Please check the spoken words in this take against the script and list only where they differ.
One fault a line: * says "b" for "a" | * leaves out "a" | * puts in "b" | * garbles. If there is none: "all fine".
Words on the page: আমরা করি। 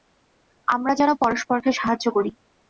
* puts in "যেন পরস্পরকে সাহায্য"